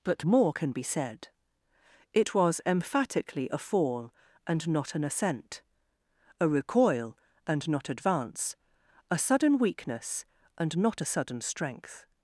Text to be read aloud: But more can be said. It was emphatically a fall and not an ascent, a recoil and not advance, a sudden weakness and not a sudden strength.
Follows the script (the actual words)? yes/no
yes